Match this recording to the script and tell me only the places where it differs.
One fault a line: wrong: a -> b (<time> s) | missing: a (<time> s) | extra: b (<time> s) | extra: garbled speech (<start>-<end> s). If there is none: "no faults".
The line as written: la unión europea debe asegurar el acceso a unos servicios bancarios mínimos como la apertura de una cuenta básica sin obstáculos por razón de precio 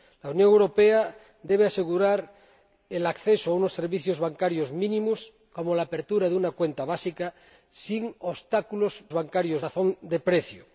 wrong: por -> bancarios (9.1 s)